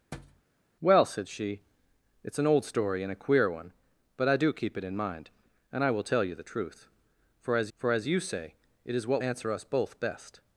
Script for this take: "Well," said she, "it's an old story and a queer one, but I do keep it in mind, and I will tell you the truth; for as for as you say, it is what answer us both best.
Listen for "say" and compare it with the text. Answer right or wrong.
right